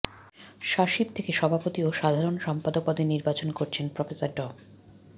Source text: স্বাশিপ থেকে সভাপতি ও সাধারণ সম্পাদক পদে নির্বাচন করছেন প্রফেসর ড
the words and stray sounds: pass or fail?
pass